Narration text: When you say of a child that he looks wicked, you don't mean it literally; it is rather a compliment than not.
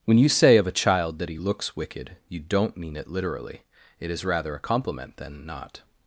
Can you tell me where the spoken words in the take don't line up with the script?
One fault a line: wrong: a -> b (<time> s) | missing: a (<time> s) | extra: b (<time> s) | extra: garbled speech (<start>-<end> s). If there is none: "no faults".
no faults